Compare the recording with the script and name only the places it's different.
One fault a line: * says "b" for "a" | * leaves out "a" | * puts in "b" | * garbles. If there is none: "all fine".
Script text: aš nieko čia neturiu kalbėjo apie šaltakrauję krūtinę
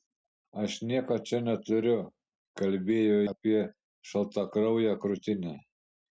all fine